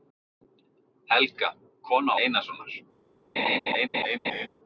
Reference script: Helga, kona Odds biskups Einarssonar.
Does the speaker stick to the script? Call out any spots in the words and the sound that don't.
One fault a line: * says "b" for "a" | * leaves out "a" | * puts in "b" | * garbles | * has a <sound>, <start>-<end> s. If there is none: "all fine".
* leaves out "Odds biskups"
* has a laugh, 3.4-4.5 s